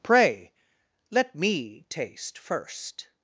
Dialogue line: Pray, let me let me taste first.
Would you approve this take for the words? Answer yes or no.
no